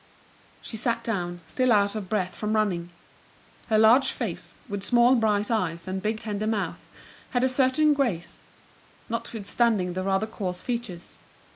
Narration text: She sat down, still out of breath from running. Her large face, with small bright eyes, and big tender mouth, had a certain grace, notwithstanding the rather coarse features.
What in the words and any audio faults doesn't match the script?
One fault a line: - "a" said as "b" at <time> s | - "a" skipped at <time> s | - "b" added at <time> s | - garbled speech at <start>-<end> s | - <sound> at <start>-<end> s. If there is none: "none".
none